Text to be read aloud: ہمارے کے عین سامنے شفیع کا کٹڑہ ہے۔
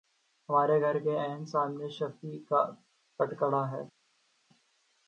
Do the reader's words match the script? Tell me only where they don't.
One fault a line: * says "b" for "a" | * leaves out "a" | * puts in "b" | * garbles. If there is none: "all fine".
* puts in "گھر"